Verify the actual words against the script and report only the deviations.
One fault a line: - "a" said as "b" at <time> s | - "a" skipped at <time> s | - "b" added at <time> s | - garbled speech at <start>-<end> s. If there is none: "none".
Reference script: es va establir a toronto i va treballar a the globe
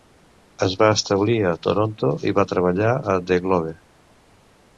none